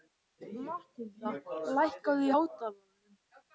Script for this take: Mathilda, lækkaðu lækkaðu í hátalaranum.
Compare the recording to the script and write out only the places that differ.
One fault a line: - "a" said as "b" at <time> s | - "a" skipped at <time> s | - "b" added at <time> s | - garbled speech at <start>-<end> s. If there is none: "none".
- "lækkaðu" skipped at 2.3 s